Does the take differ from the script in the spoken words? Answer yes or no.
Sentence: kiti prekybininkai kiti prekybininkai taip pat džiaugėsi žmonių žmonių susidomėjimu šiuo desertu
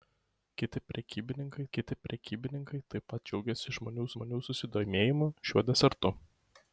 no